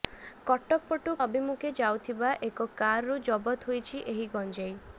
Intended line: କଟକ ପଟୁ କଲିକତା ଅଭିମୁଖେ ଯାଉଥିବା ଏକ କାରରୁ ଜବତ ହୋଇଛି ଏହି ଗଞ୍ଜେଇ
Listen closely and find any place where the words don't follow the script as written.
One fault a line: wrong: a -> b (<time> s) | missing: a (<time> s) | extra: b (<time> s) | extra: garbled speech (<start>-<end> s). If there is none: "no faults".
missing: କଲିକତା (1.1 s)